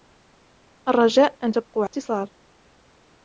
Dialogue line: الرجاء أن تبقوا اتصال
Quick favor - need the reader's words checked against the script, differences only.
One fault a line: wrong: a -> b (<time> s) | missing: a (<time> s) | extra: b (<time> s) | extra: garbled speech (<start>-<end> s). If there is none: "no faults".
no faults